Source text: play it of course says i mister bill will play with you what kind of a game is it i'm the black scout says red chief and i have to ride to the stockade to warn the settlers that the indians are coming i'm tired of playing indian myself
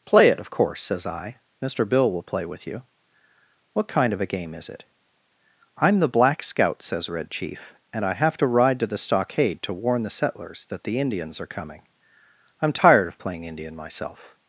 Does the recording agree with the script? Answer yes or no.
yes